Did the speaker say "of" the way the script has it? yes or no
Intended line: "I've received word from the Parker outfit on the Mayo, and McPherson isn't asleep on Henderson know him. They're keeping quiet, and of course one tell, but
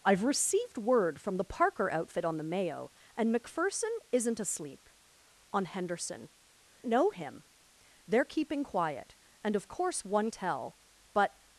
yes